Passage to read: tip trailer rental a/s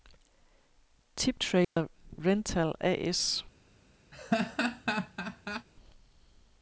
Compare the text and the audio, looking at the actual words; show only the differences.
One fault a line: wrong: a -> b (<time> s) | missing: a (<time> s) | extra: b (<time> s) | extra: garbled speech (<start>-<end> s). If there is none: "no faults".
no faults